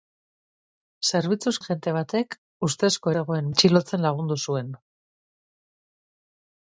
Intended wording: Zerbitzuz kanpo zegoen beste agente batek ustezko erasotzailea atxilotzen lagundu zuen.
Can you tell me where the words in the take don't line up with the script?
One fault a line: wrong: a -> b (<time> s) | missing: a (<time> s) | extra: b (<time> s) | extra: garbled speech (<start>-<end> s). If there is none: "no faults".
missing: kanpo zegoen beste (1.5 s)
wrong: erasotzailea -> zegoen (3.2 s)